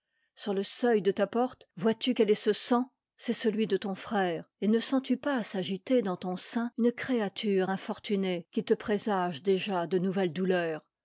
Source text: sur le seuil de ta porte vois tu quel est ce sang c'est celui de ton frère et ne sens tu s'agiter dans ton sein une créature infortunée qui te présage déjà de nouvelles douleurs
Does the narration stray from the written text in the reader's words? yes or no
yes